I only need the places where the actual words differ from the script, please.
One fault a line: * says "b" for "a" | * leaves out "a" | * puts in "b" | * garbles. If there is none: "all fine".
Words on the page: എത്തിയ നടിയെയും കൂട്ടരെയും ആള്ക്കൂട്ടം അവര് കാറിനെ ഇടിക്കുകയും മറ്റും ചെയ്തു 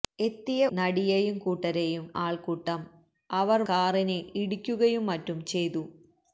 all fine